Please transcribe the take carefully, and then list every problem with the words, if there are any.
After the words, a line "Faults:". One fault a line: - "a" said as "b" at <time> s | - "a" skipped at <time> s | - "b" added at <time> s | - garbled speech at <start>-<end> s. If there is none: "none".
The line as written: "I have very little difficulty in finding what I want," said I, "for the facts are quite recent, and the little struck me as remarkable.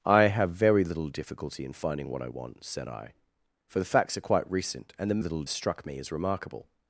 "I have very little difficulty in finding what I want," said I, "for the facts are quite recent, and the little struck me as remarkable.
Faults:
none